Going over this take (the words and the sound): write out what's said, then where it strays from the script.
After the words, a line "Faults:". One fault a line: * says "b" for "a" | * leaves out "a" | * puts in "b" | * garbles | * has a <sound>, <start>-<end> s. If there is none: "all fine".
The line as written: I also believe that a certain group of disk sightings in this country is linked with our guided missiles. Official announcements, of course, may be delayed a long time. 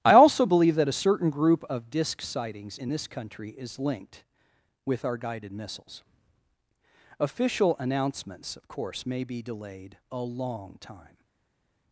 I also believe that a certain group of disk sightings in this country is linked with our guided missiles. Official announcements, of course, may be delayed a long time.
Faults:
all fine